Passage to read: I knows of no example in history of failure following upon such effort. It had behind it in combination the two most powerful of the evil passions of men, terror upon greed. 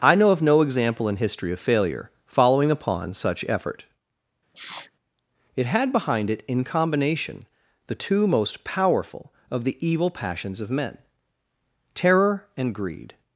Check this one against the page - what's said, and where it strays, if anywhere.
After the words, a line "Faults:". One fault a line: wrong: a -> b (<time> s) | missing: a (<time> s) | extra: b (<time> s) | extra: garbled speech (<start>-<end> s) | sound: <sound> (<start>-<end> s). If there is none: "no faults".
I know of no example in history of failure following upon such effort. It had behind it in combination the two most powerful of the evil passions of men, terror and greed.
Faults:
wrong: knows -> know (0.1 s)
sound: sniff (4.5-4.9 s)
wrong: upon -> and (12.6 s)